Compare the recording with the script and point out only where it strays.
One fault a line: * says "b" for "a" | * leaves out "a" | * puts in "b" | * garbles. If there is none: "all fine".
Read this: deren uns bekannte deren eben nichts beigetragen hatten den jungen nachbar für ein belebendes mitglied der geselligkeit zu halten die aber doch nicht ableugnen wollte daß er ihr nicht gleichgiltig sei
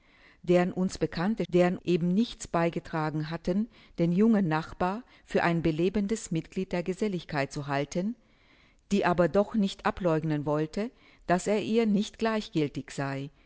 all fine